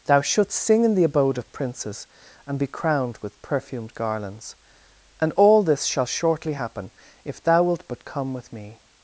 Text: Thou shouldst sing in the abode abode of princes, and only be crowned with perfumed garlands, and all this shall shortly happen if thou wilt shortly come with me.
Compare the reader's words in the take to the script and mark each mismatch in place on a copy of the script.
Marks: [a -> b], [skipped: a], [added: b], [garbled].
Thou shouldst sing in the abode [skipped: abode] of princes, and [skipped: only] be crowned with perfumed garlands, and all this shall shortly happen if thou wilt [shortly -> but] come with me.